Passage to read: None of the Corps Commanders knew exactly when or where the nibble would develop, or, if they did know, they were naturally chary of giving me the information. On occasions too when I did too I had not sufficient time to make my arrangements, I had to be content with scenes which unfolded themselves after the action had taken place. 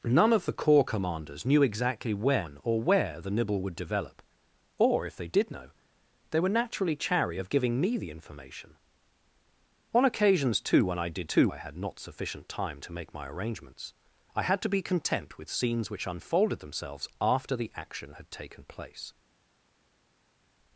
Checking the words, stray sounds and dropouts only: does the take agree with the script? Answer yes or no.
yes